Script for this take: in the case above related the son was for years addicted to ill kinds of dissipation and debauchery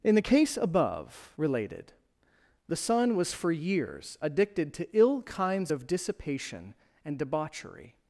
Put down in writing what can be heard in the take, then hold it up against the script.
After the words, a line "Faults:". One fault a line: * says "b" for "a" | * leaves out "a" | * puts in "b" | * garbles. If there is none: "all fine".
in the case above related the son was for years addicted to ill kinds of dissipation and debauchery
Faults:
all fine